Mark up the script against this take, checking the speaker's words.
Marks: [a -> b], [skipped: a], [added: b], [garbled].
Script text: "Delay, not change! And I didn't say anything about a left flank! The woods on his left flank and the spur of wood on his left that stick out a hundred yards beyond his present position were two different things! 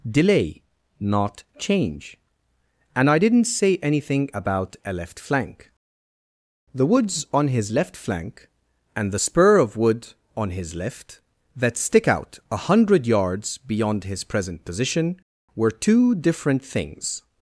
"Delay, not change! And I didn't say anything about a left flank! The woods on his left flank and the spur of wood on his left that stick out a hundred yards beyond his present position were two different things!